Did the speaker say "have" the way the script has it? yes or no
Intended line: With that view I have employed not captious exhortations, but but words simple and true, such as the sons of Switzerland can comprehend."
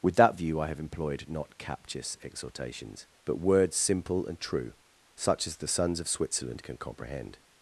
yes